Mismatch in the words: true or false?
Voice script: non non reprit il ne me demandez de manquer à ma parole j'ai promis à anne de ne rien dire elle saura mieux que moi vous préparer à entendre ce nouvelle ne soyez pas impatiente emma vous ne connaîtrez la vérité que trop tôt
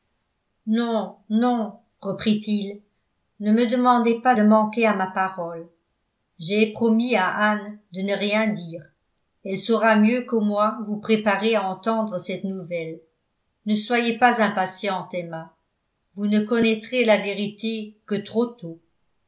true